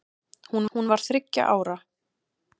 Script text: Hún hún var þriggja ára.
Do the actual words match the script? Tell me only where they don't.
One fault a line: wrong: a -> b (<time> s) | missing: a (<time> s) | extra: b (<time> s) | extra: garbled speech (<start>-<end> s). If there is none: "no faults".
no faults